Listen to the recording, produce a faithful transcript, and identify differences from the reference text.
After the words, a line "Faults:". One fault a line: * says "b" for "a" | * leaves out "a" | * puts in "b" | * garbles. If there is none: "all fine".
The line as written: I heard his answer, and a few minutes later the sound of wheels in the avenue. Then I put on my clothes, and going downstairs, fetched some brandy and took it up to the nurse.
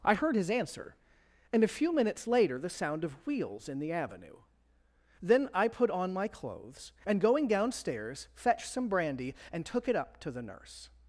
I heard his answer, and a few minutes later the sound of wheels in the avenue. Then I put on my clothes, and going downstairs, fetched some brandy and took it up to the nurse.
Faults:
all fine